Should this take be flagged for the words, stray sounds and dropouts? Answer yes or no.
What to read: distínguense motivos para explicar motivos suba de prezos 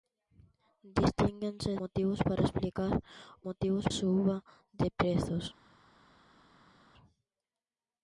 no